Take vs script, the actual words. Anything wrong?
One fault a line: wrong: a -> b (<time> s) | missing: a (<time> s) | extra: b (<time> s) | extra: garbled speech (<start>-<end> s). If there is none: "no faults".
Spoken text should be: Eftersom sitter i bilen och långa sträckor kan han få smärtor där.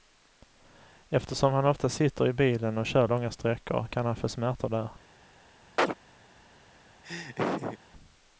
extra: han ofta (1.5 s)
extra: kör (2.9 s)